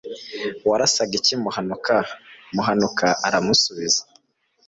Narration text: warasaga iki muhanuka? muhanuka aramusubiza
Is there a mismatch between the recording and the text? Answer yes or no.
no